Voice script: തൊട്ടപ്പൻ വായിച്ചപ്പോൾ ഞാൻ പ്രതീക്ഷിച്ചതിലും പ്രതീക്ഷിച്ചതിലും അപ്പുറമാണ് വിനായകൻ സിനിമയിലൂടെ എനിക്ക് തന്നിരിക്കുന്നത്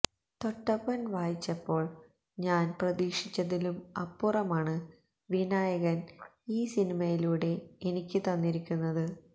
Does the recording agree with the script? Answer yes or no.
no